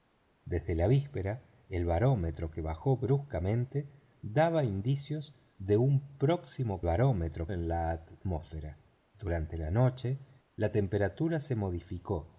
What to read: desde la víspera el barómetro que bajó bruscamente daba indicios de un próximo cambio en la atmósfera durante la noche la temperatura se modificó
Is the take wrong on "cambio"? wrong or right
wrong